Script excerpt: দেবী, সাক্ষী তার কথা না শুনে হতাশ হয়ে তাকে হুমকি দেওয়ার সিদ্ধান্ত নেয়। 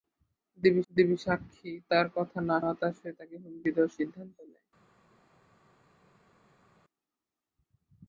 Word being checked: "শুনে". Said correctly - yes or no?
no